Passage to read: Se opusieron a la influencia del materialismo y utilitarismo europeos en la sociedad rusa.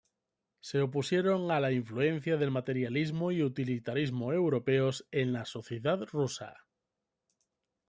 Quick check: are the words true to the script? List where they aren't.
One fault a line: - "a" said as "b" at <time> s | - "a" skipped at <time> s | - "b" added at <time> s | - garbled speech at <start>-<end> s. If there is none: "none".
none